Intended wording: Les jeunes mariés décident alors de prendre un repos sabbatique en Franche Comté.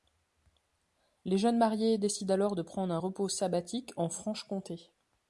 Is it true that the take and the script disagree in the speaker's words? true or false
false